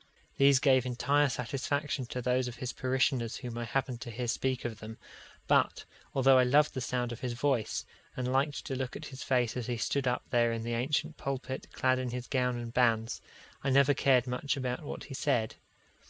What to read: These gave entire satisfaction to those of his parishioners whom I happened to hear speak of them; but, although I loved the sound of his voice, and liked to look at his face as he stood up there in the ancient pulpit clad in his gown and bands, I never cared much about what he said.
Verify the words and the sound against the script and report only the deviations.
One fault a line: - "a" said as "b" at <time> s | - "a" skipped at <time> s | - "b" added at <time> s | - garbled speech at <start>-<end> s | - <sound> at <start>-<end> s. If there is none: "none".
none